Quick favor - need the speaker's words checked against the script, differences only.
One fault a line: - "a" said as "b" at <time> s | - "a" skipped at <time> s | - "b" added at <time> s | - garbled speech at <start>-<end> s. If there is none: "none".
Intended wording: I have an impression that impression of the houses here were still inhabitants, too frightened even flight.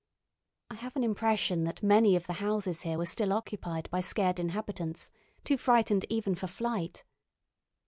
- "impression" said as "many" at 1.8 s
- "occupied by scared" added at 3.3 s
- "for" added at 6.3 s